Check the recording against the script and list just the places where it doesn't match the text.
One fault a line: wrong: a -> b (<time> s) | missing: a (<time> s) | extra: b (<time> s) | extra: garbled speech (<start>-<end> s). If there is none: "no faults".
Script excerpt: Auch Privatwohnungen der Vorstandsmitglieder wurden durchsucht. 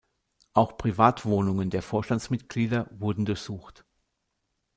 no faults